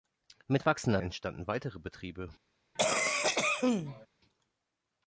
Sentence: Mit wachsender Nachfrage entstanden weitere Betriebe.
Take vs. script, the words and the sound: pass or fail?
fail